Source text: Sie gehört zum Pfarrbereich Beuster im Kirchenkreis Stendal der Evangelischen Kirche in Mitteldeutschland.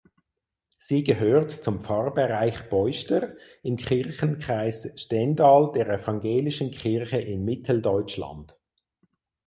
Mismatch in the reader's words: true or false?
false